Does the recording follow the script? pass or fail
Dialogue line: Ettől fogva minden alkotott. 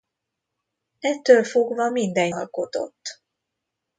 pass